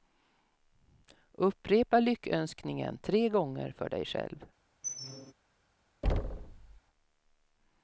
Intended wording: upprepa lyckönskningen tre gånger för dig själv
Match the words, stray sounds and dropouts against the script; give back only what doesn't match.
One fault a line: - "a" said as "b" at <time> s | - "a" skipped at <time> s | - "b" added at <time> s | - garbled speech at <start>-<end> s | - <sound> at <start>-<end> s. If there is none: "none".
- squeak at 4.8-5.3 s
- thud at 6.0-6.8 s